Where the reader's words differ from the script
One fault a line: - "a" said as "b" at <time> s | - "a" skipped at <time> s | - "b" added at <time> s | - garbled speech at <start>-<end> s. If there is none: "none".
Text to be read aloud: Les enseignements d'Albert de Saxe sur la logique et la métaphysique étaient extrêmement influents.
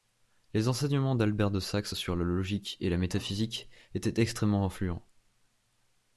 none